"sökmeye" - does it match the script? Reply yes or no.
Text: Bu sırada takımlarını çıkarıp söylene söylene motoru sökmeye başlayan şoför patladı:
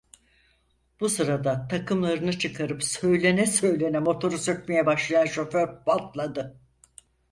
yes